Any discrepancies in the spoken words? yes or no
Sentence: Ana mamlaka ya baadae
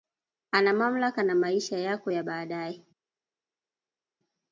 yes